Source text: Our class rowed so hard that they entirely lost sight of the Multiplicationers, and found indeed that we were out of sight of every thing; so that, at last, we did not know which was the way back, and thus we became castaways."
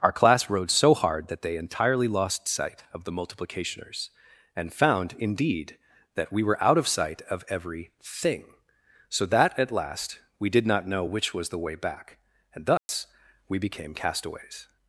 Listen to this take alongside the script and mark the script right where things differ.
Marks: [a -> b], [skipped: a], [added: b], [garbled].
Our class rowed so hard that they entirely lost sight of the Multiplicationers, and found indeed that we were out of sight of every thing; so that, at last, we did not know which was the way back, and thus we became castaways."